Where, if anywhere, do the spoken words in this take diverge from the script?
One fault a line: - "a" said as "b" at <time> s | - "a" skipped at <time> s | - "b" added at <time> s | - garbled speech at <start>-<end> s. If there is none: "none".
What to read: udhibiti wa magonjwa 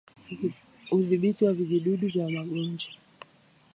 - "vijidudu vya" added at 1.5 s